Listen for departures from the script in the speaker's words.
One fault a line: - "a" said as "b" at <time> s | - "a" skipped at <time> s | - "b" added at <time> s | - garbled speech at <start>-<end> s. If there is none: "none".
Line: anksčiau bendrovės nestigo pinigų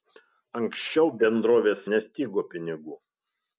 none